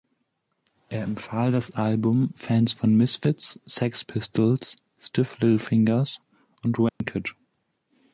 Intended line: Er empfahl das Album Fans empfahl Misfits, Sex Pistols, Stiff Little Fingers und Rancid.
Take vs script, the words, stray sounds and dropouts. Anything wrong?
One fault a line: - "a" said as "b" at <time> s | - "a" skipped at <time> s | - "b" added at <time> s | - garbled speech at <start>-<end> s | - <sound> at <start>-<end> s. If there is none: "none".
- "empfahl" said as "von" at 2.7 s
- dropout at 6.9-7.0 s